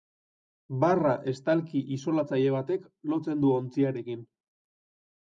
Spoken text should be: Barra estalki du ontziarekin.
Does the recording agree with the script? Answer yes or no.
no